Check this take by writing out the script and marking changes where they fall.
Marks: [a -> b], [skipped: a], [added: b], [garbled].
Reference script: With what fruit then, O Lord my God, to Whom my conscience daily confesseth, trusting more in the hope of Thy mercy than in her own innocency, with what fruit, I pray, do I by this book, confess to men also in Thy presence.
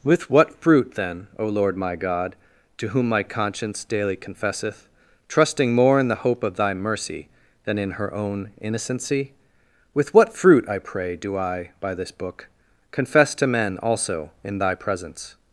With what fruit then, O Lord my God, to Whom my conscience daily confesseth, trusting more in the hope of Thy mercy than in her own innocency, with what fruit, I pray, do I by this book, confess to men also in Thy presence.